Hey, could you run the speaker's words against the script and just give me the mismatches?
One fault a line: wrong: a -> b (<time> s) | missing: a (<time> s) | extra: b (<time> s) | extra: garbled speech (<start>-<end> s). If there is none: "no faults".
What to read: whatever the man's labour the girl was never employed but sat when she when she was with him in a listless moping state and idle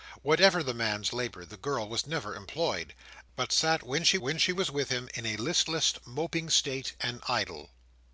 no faults